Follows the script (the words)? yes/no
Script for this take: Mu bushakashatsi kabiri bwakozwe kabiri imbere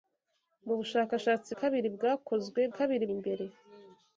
yes